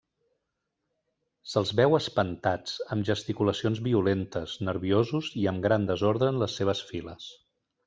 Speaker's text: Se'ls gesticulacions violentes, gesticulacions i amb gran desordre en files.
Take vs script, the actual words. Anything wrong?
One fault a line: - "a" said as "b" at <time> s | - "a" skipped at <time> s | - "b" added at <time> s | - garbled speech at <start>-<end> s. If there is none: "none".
- "veu espantats amb" added at 1.8 s
- "gesticulacions" said as "nerviosos" at 4.7 s
- "les seves" added at 6.5 s